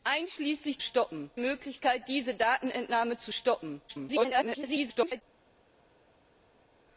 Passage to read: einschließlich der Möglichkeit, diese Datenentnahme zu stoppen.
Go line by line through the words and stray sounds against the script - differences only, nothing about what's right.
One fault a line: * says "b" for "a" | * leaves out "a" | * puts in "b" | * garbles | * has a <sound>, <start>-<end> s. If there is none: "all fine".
* says "stoppen" for "der"
* garbles